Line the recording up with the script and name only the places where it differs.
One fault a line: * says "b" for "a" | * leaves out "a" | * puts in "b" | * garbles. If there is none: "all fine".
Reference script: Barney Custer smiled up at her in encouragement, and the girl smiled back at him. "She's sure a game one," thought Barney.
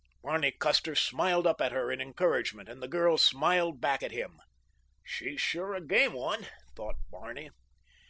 all fine